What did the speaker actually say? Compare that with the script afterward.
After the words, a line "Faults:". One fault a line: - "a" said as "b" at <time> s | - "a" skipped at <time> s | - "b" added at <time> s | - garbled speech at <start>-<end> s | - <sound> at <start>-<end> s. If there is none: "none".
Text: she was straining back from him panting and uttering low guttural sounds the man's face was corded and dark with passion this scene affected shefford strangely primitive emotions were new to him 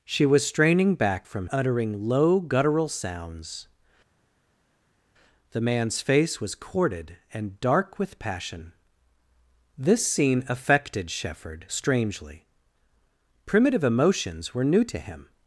she was straining back from uttering low guttural sounds the man's face was corded and dark with passion this scene affected shefford strangely primitive emotions were new to him
Faults:
- "him panting and" skipped at 1.5 s